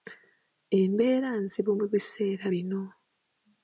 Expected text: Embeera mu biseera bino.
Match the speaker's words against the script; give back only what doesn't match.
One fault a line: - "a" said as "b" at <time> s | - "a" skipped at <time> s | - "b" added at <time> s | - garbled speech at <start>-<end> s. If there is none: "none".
- "nzibu" added at 1.4 s